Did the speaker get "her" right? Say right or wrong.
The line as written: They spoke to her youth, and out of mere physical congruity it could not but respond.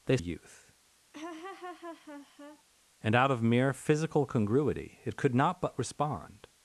wrong